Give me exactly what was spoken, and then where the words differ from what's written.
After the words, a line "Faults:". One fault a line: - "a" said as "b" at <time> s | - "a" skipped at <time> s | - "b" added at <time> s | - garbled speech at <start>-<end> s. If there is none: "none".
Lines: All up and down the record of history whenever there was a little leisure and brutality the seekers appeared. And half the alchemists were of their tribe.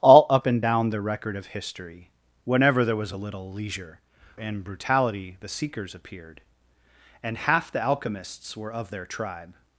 All up and down the record of history whenever there was a little leisure and brutality the seekers appeared. And half the alchemists were of their tribe.
Faults:
none